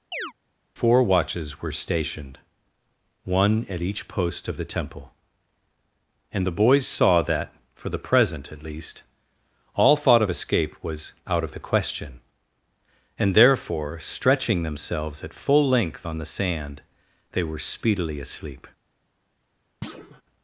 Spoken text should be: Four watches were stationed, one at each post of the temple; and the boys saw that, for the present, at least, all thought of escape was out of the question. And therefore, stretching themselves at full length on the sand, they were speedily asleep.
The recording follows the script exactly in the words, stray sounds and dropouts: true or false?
false